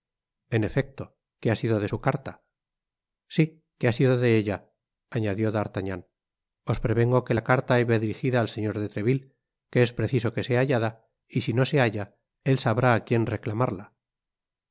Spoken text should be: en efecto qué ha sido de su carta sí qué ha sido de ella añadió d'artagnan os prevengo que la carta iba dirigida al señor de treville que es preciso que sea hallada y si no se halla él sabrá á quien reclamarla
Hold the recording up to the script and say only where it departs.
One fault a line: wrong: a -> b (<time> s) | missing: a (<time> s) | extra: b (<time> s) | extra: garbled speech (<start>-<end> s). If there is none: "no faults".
no faults